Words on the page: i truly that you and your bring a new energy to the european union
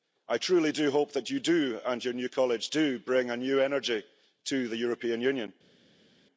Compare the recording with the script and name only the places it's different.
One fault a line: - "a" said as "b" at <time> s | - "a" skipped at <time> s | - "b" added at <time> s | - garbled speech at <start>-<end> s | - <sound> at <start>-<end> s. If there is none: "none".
- "do hope" added at 0.7 s
- "new college do" added at 2.1 s